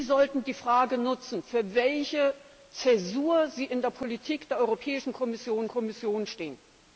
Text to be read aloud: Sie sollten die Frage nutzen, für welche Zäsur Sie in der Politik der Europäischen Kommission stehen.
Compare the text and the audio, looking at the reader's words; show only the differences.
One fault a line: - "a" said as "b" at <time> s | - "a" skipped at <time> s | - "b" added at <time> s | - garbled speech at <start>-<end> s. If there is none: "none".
- "Kommission" added at 5.7 s